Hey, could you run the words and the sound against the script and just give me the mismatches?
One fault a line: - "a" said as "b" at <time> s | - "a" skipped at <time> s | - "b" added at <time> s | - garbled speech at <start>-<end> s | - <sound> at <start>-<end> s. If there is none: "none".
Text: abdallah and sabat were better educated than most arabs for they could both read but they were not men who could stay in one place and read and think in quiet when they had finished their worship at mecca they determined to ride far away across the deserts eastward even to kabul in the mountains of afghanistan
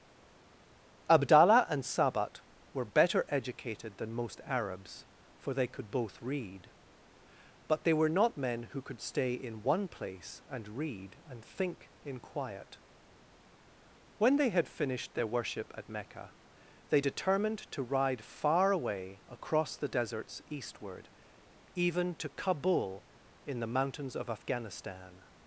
none